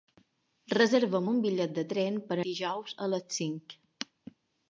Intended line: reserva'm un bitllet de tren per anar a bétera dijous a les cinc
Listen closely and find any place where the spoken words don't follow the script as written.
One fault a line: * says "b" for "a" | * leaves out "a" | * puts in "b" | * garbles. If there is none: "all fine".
* leaves out "anar a bétera"